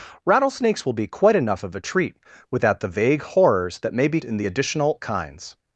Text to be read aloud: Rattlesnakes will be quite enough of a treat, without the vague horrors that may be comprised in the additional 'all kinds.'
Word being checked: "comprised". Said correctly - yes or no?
no